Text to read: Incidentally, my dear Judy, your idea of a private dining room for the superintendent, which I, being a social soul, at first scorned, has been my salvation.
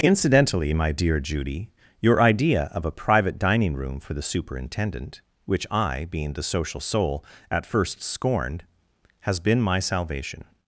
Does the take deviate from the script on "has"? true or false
false